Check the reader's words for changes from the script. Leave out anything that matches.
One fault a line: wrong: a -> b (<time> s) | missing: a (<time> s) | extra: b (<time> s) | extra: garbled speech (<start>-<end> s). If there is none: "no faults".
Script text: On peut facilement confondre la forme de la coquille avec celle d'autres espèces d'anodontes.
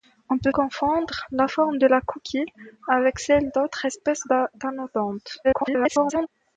missing: facilement (0.5 s)
extra: garbled speech (5.4-6.3 s)